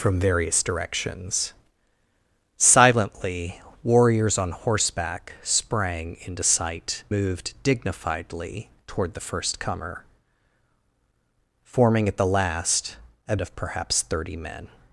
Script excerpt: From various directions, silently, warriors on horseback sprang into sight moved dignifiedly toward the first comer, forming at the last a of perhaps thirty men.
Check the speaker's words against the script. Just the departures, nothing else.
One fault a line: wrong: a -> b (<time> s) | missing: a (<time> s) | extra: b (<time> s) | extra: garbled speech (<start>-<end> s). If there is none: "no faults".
no faults